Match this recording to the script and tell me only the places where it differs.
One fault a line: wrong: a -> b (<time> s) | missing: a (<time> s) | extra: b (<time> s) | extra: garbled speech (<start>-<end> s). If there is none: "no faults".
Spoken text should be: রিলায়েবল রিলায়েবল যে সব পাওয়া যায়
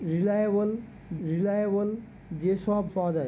no faults